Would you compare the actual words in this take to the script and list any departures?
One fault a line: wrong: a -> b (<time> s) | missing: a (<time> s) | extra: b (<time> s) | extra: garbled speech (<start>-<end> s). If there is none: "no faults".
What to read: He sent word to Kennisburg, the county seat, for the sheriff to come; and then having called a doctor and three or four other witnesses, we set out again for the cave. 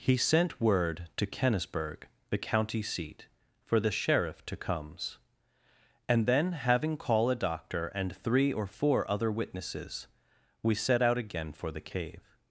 wrong: come -> comes (4.6 s)
wrong: called -> call (7.0 s)